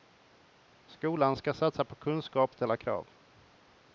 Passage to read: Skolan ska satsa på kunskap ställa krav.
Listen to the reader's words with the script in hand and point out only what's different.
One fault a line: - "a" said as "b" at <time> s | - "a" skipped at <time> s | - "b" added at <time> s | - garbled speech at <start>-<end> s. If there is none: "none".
none